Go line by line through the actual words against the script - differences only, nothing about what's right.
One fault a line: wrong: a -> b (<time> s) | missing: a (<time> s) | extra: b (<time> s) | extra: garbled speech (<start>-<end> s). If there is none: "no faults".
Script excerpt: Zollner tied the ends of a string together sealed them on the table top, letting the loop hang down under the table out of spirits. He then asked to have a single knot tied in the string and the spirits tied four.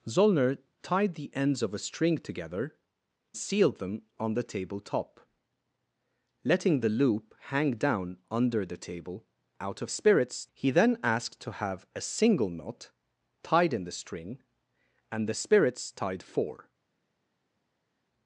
no faults